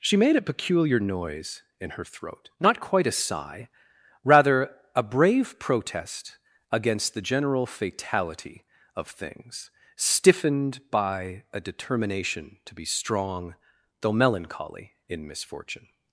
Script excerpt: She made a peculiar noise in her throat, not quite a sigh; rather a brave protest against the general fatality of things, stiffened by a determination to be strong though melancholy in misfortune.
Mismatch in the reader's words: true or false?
false